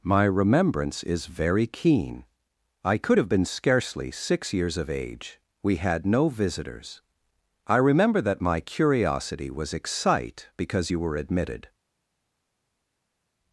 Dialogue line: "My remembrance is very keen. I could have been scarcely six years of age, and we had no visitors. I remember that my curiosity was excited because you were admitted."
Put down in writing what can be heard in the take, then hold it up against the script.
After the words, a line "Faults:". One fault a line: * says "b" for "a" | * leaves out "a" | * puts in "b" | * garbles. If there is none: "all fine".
"My remembrance is very keen. I could have been scarcely six years of age, we had no visitors. I remember that my curiosity was excite because you were admitted."
Faults:
* leaves out "and"
* says "excite" for "excited"